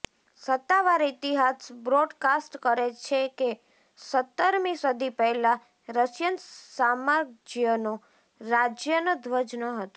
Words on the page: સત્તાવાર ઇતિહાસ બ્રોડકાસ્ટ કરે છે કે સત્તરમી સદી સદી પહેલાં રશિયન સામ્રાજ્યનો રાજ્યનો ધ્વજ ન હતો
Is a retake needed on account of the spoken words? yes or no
yes